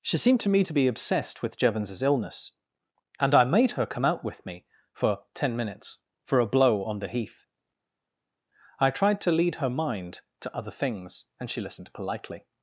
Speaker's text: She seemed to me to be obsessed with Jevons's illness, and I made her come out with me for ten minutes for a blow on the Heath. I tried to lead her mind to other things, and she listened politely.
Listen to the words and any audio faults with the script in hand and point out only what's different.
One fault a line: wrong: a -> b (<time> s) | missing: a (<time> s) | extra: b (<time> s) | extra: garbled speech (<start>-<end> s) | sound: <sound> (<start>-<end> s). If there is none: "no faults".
no faults